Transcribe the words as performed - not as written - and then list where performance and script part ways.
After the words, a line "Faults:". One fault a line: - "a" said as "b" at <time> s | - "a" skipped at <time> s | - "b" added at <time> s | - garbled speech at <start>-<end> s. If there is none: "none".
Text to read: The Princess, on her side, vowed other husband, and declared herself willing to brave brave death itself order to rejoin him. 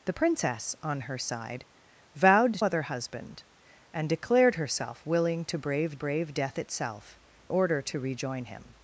The Princess, on her side, vowed other husband, and declared herself willing to brave brave death itself order to rejoin him.
Faults:
none